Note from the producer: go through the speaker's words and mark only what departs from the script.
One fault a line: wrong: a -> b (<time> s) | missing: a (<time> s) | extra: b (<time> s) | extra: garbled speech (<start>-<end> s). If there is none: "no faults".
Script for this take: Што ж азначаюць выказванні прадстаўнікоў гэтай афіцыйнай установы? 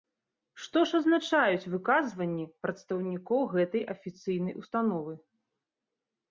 no faults